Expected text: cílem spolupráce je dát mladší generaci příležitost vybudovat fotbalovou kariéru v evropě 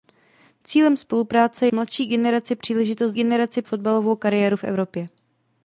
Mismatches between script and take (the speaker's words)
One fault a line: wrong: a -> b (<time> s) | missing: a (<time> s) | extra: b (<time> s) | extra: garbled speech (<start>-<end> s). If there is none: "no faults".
missing: je dát (1.7 s)
wrong: vybudovat -> generaci (3.1 s)